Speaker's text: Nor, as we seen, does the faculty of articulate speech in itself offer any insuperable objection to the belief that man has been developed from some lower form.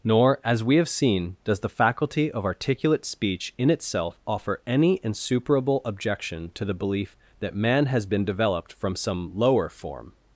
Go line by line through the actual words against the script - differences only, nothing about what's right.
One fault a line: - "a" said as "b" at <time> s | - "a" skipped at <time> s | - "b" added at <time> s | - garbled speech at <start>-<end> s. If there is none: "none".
- "have" added at 0.8 s